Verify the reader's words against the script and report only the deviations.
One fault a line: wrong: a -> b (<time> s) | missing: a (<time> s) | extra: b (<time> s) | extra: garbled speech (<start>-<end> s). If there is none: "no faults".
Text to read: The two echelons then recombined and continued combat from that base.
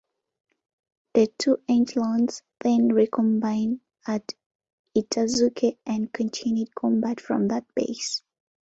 extra: at Itazuke (4.1 s)